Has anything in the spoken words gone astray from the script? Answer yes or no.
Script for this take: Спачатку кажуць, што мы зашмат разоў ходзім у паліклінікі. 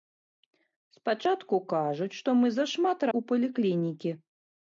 yes